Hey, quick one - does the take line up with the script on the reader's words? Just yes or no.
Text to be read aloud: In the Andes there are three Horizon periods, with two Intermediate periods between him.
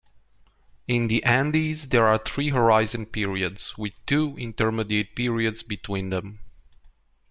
no